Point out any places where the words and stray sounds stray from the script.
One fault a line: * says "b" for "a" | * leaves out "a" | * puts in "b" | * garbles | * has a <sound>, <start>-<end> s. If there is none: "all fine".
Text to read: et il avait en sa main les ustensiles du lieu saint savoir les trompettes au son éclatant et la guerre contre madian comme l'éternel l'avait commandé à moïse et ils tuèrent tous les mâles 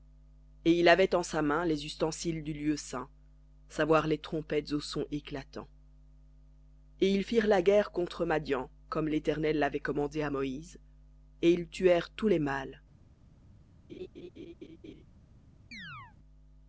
* puts in "ils firent"
* has a laugh, 13.9-15.0 s
* has a chirp, 15.7-16.2 s